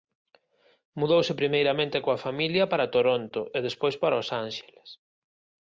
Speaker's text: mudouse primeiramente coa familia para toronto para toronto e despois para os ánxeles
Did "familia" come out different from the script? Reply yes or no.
no